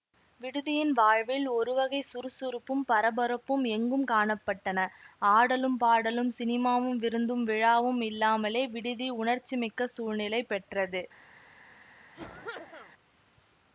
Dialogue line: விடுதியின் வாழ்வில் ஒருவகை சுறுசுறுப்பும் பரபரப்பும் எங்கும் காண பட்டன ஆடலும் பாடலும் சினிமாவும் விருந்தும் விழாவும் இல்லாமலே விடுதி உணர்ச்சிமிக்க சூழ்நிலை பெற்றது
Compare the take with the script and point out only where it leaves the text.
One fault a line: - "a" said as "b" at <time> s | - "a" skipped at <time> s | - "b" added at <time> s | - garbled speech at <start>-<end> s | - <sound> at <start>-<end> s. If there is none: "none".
- cough at 12.1-12.9 s